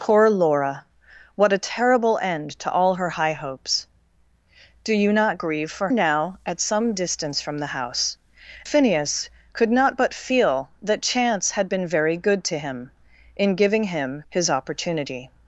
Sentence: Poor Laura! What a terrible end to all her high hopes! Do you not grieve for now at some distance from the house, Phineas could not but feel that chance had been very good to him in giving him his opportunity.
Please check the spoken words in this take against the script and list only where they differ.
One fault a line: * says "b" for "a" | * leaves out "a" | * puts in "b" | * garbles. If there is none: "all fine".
all fine